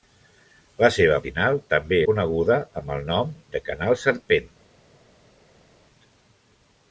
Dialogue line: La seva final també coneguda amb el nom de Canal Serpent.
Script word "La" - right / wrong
right